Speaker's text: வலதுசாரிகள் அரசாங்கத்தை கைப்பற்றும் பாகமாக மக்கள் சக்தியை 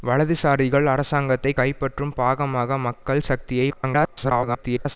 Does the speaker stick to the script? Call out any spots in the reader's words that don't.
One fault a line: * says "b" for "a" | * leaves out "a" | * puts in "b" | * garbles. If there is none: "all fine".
* garbles